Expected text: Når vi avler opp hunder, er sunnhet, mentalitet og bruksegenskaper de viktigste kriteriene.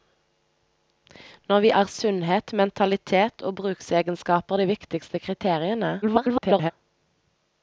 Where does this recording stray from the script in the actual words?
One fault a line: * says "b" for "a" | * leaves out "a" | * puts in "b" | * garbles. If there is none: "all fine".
* leaves out "avler opp hunder"
* garbles